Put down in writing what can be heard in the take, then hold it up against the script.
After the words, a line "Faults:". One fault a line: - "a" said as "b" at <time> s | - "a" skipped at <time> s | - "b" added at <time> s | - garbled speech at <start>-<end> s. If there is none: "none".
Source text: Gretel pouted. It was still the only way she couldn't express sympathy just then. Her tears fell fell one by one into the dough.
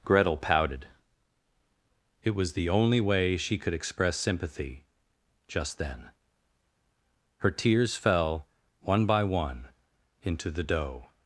Gretel pouted. It was the only way she could express sympathy just then. Her tears fell one by one into the dough.
Faults:
- "still" skipped at 2.5 s
- "couldn't" said as "could" at 3.6 s
- "fell" skipped at 8.5 s